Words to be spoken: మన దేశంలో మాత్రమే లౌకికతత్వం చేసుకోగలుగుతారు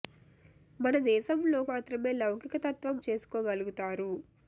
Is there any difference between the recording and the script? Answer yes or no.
no